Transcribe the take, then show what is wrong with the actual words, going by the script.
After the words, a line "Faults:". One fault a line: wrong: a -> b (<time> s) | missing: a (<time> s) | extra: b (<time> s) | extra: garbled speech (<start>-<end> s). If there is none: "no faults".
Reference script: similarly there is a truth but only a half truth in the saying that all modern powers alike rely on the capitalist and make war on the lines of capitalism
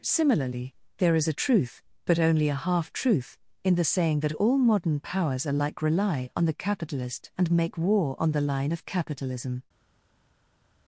similarly there is a truth but only a half truth in the saying that all modern powers alike rely on the capitalist and make war on the line of capitalism
Faults:
wrong: lines -> line (8.4 s)